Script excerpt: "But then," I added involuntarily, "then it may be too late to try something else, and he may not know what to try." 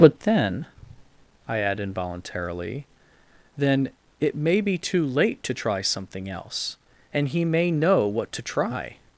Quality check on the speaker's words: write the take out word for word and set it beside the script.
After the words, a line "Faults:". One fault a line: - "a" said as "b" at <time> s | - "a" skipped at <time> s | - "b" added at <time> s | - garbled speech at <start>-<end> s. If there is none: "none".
"But then," I add involuntarily, "then it may be too late to try something else, and he may know what to try."
Faults:
- "added" said as "add" at 1.6 s
- "not" skipped at 7.7 s